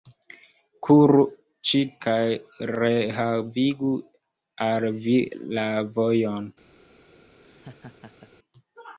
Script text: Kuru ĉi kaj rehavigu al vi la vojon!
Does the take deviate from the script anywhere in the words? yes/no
no